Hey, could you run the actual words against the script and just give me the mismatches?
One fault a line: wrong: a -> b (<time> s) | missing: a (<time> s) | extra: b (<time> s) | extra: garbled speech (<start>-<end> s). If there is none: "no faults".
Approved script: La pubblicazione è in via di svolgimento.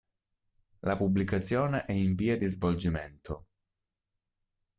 no faults